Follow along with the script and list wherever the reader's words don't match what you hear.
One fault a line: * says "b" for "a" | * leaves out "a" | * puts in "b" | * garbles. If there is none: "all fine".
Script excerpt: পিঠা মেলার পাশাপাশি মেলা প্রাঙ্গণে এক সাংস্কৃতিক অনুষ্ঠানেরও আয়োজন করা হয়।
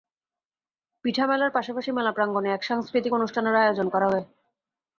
all fine